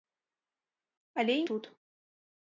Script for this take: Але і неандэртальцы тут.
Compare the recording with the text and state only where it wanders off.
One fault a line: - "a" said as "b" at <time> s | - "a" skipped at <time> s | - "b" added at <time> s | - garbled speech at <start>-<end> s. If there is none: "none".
- "неандэртальцы" skipped at 1.4 s